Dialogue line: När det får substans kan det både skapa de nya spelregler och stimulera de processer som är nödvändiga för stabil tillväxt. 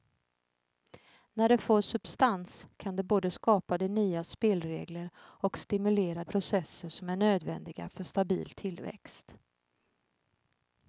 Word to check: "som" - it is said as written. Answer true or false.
true